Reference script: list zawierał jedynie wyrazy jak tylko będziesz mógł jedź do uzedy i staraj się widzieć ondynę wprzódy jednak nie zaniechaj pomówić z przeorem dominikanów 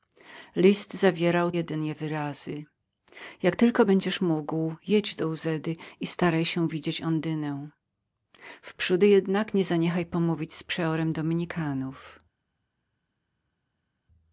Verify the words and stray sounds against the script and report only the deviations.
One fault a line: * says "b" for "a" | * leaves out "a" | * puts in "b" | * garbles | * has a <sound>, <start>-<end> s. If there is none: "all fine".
all fine